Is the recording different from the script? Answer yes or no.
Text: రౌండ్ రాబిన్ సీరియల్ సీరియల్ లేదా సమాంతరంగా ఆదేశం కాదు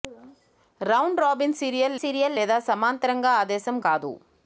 no